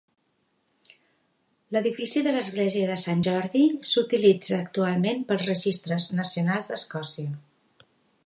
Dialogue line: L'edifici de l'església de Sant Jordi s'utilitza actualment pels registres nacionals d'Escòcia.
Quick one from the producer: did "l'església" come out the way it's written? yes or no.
yes